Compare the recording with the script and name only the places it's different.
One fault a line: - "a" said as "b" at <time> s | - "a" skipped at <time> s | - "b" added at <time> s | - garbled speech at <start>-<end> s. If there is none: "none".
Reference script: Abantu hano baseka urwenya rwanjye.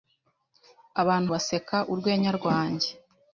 - "hano" skipped at 1.3 s